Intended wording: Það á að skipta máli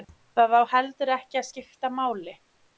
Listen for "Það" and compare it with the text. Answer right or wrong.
right